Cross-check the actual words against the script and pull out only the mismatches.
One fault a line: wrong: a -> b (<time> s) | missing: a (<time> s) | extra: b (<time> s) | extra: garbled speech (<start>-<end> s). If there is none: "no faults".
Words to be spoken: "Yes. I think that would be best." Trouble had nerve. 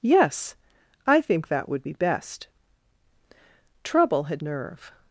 no faults